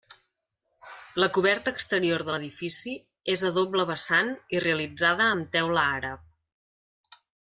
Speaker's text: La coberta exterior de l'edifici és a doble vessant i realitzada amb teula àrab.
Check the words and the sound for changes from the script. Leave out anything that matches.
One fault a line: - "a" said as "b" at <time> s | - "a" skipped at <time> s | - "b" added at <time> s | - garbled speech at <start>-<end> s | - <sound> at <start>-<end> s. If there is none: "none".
none